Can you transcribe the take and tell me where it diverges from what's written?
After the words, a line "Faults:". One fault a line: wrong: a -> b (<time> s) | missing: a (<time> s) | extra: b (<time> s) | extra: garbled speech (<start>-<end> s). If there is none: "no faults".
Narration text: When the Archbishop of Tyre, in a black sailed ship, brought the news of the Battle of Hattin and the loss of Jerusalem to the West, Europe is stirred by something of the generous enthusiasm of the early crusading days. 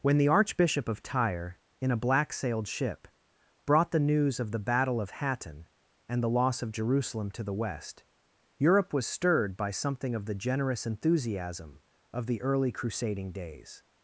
When the Archbishop of Tyre, in a black sailed ship, brought the news of the Battle of Hattin and the loss of Jerusalem to the West, Europe was stirred by something of the generous enthusiasm of the early crusading days.
Faults:
wrong: is -> was (8.9 s)